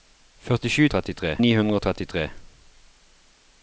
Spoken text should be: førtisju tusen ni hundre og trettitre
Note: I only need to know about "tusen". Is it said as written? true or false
false